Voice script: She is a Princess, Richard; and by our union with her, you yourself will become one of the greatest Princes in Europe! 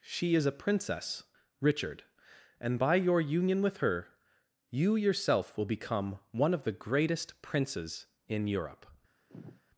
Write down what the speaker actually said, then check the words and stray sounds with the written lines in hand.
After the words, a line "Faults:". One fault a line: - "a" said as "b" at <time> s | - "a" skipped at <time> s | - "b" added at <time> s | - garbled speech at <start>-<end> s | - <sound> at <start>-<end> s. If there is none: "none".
She is a Princess, Richard; and by your union with her, you yourself will become one of the greatest Princes in Europe!
Faults:
- "our" said as "your" at 3.0 s
- sigh at 9.3-9.6 s